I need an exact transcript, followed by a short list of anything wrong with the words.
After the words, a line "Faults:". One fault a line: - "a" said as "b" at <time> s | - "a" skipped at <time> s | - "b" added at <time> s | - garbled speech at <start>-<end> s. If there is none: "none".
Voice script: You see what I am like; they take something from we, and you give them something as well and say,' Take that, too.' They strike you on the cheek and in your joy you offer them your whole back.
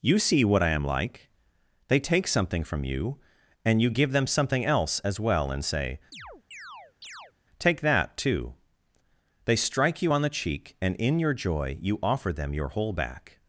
You see what I am like; they take something from you, and you give them something else as well and say,' Take that, too.' They strike you on the cheek and in your joy you offer them your whole back.
Faults:
- "we" said as "you" at 2.8 s
- "else" added at 4.7 s